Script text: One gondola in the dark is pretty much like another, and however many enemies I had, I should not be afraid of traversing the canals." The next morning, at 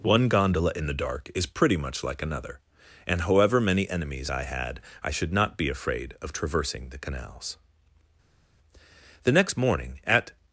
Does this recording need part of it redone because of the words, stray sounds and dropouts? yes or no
no